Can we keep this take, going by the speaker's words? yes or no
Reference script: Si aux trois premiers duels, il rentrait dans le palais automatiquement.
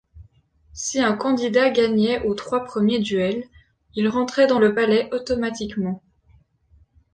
no